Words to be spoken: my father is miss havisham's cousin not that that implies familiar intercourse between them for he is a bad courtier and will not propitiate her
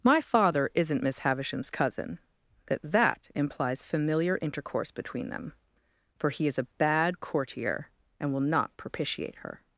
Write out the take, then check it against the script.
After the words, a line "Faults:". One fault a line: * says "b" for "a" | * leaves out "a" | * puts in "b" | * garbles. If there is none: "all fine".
my father isn't miss havisham's cousin that that implies familiar intercourse between them for he is a bad courtier and will not propitiate her
Faults:
* says "isn't" for "is"
* leaves out "not"